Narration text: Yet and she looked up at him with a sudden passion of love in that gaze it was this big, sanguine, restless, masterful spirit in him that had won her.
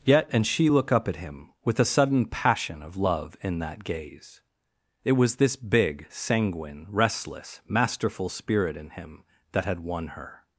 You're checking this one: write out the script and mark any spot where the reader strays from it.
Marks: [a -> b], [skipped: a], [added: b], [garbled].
Yet and she [looked -> look] up at him with a sudden passion of love in that gaze it was this big, sanguine, restless, masterful spirit in him that had won her.